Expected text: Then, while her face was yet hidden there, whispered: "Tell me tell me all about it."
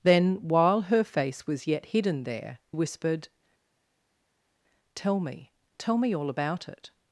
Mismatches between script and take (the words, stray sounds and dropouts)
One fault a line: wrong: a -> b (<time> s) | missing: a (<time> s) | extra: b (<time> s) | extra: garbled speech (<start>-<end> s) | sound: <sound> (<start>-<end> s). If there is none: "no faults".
no faults